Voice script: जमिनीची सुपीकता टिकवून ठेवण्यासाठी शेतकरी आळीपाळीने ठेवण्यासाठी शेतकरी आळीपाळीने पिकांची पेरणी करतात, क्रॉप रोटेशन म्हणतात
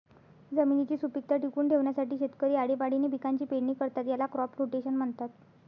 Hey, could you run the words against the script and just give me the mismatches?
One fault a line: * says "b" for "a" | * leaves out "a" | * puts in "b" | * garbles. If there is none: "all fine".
* leaves out "ठेवण्यासाठी शेतकरी आळीपाळीने"
* puts in "याला"